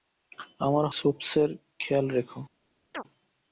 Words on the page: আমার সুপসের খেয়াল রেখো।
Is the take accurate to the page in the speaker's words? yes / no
yes